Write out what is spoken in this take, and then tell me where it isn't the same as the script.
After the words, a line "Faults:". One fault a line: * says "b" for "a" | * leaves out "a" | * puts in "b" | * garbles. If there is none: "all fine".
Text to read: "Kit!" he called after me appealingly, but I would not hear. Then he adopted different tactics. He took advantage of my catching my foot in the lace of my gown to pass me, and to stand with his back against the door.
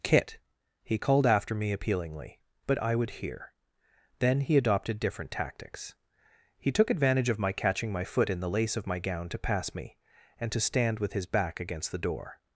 "Kit!" he called after me appealingly, but I would hear. Then he adopted different tactics. He took advantage of my catching my foot in the lace of my gown to pass me, and to stand with his back against the door.
Faults:
* leaves out "not"